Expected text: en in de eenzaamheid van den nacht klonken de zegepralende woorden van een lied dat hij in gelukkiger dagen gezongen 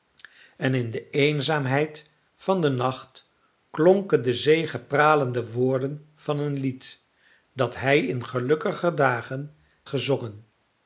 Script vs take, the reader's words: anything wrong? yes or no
no